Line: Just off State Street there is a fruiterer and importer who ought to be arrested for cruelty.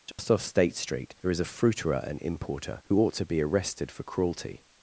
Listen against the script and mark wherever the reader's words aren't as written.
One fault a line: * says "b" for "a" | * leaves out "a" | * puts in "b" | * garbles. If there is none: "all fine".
all fine